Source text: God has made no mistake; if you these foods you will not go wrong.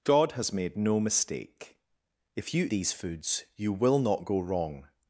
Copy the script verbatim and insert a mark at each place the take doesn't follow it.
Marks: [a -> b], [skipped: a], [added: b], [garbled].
God has made no mistake; if you these foods you will not go wrong.